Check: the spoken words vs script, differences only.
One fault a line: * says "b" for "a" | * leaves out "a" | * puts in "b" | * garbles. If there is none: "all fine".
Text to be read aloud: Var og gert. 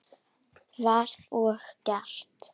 all fine